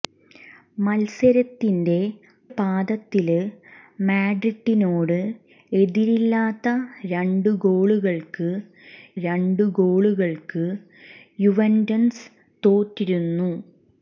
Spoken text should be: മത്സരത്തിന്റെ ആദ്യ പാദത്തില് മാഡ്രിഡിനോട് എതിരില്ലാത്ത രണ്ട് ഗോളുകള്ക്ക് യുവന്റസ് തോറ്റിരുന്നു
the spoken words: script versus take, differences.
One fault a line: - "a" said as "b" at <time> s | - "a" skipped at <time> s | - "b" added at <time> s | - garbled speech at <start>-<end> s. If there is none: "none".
- "ആദ്യ" skipped at 2.0 s
- "രണ്ട് ഗോളുകള്ക്ക്" added at 9.2 s